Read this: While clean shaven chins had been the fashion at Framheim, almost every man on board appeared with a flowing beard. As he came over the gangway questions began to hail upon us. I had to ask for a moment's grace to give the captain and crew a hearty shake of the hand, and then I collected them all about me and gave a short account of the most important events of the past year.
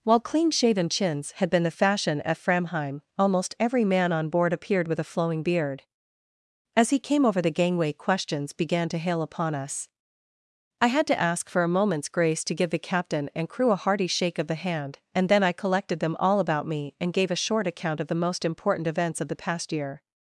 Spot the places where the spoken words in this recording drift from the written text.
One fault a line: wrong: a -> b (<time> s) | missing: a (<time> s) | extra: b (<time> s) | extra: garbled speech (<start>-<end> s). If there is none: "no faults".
no faults